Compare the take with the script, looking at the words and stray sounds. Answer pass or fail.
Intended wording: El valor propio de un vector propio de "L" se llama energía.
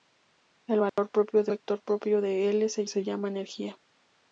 fail